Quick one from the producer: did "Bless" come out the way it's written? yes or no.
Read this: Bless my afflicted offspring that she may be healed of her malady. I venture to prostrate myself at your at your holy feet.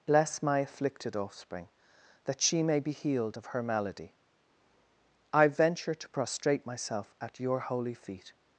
yes